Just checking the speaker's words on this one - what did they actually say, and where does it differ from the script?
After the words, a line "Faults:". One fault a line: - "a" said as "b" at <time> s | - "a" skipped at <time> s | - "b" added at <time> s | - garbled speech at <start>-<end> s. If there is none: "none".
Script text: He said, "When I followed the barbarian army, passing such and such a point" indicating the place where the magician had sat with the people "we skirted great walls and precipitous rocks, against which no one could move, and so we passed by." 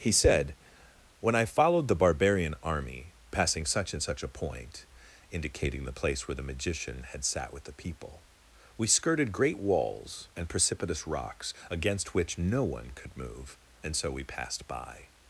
He said, "When I followed the barbarian army, passing such and such a point" indicating the place where the magician had sat with the people "we skirted great walls and precipitous rocks, against which no one could move, and so we passed by."
Faults:
none